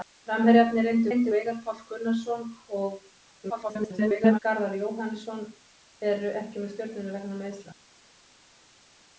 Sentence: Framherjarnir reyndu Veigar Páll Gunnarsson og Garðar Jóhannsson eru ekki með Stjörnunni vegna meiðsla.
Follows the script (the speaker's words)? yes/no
no